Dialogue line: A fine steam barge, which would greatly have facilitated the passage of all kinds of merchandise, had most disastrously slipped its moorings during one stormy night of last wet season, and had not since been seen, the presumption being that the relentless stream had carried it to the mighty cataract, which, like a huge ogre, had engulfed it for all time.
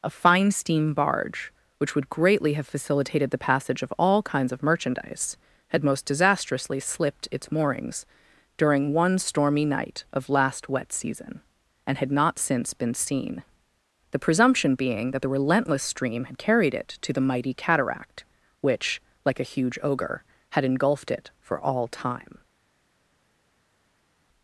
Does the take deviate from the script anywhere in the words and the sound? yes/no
no